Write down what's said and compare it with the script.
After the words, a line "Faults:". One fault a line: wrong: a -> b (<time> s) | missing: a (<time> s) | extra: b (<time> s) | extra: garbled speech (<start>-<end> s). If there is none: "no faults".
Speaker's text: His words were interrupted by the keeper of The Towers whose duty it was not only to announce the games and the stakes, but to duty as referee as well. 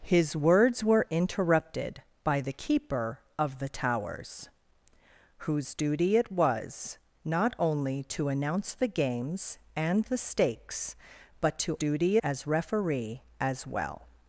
His words were interrupted by the keeper of The Towers whose duty it was not only to announce the games and the stakes, but to duty as referee as well.
Faults:
no faults